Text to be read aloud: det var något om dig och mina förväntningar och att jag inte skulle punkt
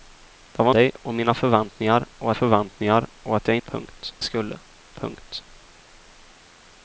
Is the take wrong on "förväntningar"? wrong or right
right